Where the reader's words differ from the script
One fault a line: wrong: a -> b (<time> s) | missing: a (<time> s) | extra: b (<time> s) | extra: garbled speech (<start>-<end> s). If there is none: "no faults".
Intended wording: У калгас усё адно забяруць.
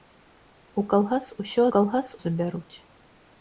wrong: адно -> калгас (1.8 s)